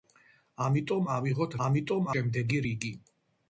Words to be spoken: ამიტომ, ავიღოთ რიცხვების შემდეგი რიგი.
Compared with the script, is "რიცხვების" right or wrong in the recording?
wrong